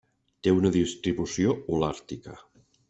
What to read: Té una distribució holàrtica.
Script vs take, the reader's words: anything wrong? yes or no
no